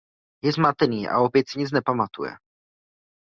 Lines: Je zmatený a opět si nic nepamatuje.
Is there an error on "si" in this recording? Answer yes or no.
no